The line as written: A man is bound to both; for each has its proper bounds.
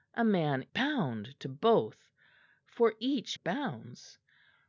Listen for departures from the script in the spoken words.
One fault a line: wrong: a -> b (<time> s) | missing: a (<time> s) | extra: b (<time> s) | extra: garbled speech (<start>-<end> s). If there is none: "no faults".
missing: is (0.7 s)
missing: has its proper (3.4 s)